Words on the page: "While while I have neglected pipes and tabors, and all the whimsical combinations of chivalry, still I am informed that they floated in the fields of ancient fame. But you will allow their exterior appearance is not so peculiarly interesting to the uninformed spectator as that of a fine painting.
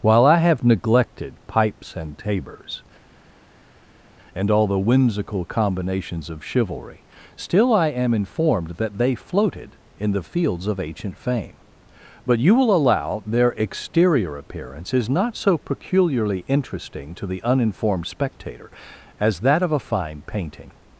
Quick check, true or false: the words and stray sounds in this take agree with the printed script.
false